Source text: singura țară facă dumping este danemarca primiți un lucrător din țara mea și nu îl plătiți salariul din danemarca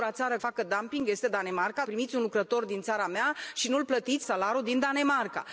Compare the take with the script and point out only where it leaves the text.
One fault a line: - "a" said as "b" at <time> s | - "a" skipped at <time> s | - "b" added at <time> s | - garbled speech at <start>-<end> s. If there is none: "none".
none